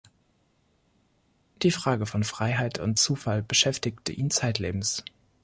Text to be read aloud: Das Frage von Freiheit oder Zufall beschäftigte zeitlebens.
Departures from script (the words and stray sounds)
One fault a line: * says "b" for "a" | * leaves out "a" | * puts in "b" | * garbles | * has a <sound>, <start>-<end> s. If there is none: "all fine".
* says "Die" for "Das"
* says "und" for "oder"
* puts in "ihn"